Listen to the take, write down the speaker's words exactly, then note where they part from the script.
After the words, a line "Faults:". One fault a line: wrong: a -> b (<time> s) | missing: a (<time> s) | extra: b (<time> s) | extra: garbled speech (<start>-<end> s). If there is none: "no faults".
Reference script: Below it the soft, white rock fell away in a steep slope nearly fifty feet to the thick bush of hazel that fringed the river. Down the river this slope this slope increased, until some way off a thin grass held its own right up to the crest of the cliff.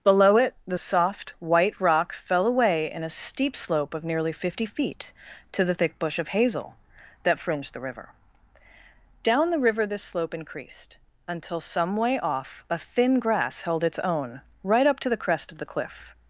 Below it the soft, white rock fell away in a steep slope of nearly fifty feet to the thick bush of hazel that fringed the river. Down the river this slope increased, until some way off a thin grass held its own right up to the crest of the cliff.
Faults:
extra: of (3.9 s)
missing: this slope (10.3 s)